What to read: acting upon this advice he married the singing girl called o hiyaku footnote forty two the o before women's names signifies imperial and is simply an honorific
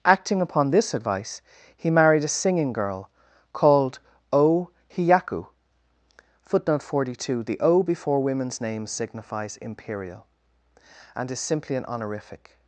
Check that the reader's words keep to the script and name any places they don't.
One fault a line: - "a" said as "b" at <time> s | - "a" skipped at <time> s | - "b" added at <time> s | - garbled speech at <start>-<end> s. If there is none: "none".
- "the" said as "a" at 2.2 s